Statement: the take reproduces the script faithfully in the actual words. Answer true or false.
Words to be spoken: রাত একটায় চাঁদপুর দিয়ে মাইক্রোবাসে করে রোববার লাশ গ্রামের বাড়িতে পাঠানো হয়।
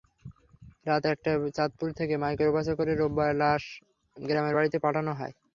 false